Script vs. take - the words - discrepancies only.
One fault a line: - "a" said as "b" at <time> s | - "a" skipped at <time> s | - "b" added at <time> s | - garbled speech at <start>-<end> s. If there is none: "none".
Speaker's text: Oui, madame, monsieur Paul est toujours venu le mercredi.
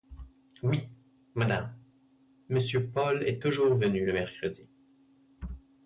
none